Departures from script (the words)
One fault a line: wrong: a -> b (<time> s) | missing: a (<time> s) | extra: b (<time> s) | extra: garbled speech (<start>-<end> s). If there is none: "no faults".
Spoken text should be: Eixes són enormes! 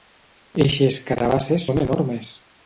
extra: carabasses (1.1 s)